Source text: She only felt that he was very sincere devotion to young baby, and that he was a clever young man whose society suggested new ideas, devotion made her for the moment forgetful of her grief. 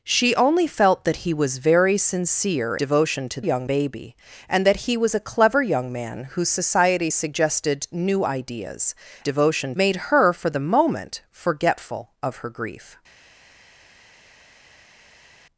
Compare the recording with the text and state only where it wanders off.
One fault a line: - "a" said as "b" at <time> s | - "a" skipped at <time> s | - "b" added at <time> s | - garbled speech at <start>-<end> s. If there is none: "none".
none